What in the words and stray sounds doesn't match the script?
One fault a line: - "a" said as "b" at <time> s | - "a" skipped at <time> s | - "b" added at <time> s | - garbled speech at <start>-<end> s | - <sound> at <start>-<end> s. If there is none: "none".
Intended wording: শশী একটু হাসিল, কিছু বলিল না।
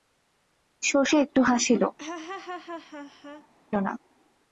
- "কিছু বলিল" skipped at 1.8 s
- laugh at 2.0-3.5 s